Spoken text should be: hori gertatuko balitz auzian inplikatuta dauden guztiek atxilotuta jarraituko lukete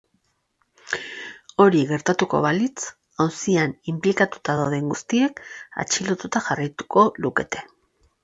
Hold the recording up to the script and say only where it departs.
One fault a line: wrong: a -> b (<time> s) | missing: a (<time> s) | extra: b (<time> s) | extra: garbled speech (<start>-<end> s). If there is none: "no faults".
no faults